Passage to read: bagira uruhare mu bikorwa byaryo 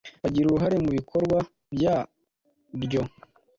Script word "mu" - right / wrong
right